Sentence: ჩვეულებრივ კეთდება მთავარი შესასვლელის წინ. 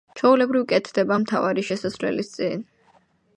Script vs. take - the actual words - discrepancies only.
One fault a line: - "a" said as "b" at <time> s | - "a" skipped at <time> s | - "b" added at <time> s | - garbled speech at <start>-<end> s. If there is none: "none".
none